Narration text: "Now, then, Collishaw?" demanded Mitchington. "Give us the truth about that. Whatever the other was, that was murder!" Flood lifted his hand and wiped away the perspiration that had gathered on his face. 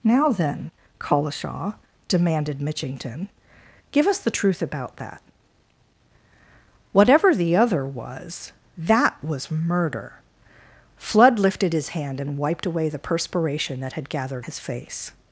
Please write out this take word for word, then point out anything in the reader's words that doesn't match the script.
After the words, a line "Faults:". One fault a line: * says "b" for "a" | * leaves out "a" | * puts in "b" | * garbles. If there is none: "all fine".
"Now, then, Collishaw?" demanded Mitchington. "Give us the truth about that. Whatever the other was, that was murder!" Flood lifted his hand and wiped away the perspiration that had gathered his face.
Faults:
* leaves out "on"